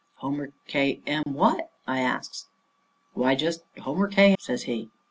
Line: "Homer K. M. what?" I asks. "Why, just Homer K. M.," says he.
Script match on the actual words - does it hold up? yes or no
no